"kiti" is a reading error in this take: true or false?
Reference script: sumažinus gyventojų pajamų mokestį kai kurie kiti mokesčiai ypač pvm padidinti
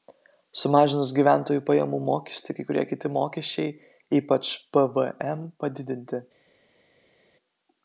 false